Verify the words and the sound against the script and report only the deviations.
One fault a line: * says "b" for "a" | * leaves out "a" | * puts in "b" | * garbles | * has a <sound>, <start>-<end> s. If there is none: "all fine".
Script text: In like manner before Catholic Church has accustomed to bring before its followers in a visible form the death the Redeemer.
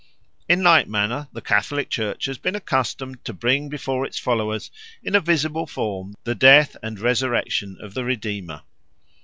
* says "the" for "before"
* puts in "been"
* puts in "and resurrection of"